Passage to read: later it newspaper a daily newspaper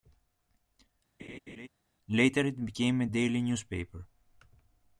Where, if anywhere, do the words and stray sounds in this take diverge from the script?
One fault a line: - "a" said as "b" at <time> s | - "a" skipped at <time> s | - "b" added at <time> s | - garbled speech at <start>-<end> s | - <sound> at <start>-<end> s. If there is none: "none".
- laugh at 1.2-1.7 s
- "newspaper" said as "became" at 2.6 s